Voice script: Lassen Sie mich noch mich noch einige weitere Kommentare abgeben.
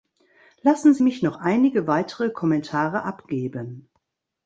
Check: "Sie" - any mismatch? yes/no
no